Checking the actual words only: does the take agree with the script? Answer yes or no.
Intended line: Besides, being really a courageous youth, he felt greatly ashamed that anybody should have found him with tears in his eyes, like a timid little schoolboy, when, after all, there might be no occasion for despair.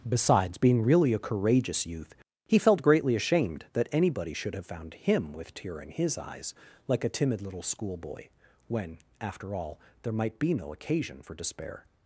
no